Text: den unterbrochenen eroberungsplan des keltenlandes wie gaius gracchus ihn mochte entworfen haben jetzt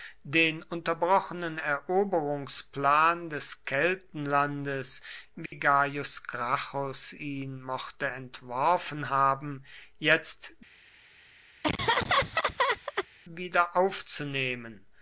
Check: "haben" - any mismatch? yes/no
no